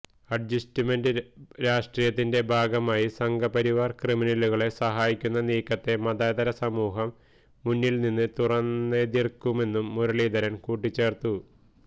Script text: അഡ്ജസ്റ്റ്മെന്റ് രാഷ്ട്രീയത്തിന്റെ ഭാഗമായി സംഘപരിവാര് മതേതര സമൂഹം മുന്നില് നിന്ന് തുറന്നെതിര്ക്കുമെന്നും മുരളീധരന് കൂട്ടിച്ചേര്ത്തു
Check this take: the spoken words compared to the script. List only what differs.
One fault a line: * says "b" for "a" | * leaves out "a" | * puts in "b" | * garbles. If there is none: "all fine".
* puts in "ക്രിമിനലുകളെ സഹായിക്കുന്ന നീക്കത്തെ"